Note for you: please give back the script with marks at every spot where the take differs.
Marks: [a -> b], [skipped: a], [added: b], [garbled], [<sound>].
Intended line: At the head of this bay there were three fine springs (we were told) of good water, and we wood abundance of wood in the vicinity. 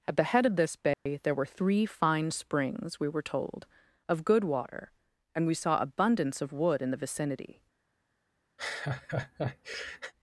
At the head of this bay [dropout] there were three fine springs (we were told) of good water, and we [wood -> saw] abundance of wood in the vicinity. [laugh]